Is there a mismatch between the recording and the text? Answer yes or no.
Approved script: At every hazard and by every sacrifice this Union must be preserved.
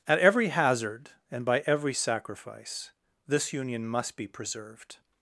no